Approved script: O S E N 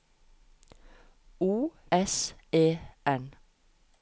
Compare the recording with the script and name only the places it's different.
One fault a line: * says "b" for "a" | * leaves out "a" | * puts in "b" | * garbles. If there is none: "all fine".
all fine